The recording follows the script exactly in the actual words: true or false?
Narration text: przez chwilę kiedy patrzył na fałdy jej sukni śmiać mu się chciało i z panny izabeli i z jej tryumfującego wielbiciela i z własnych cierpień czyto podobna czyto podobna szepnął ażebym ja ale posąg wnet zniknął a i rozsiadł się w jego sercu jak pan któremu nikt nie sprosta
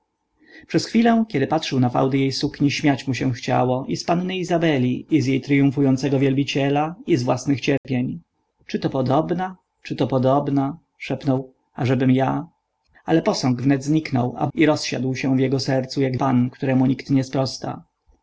true